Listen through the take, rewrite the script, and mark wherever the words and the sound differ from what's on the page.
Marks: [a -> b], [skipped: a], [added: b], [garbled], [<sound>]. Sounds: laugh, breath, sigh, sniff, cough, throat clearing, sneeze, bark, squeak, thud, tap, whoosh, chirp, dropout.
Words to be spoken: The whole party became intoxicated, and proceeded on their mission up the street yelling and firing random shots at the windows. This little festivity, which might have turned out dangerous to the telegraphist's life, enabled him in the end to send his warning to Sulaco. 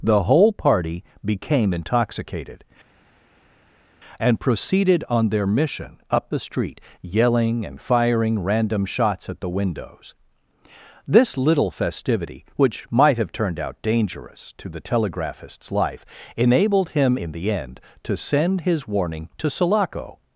The whole party became intoxicated, and proceeded on their mission up the street yelling and firing random shots at the windows. This little festivity, which might have turned out dangerous to the telegraphist's life, enabled him in the end to send his warning to Sulaco.